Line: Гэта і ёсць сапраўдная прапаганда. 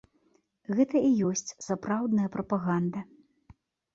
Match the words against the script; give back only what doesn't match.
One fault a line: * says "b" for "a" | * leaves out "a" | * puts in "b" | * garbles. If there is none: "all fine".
all fine